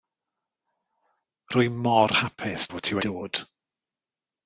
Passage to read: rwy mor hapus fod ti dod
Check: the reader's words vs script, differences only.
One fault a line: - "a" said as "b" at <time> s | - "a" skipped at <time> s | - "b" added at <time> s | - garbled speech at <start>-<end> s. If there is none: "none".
none